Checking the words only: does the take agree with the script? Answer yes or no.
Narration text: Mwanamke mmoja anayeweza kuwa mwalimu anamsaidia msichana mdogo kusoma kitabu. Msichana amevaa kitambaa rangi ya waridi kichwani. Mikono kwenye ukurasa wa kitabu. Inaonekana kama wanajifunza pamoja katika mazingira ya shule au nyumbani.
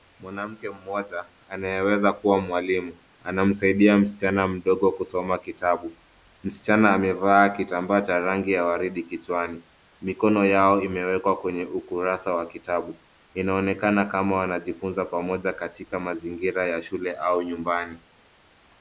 no